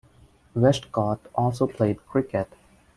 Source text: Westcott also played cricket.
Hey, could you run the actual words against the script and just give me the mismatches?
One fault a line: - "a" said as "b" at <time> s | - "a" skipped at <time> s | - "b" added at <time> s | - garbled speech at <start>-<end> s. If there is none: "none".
none